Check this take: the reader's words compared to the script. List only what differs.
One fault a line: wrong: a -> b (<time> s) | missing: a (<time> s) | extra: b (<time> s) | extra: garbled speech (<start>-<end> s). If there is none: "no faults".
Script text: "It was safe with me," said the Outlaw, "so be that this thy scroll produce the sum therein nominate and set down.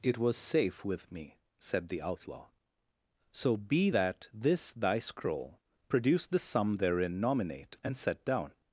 no faults